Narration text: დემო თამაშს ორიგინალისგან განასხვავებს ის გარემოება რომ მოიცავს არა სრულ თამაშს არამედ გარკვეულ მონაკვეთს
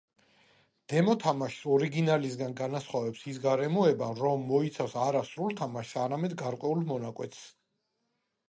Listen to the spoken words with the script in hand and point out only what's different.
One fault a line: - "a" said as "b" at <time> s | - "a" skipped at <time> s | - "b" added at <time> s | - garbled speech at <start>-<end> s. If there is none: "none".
none